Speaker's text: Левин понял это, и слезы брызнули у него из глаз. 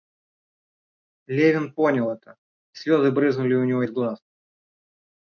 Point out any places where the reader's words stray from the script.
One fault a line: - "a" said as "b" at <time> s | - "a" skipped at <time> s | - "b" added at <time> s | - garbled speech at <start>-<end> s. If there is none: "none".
none